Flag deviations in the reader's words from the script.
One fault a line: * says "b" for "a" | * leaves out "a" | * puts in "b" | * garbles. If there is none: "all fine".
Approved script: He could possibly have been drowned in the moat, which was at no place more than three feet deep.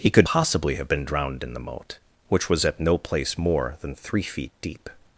all fine